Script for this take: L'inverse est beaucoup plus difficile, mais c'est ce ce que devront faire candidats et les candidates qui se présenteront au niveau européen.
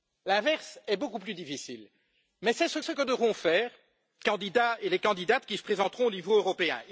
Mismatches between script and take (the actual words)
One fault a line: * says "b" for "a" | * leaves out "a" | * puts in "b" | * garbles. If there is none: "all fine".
all fine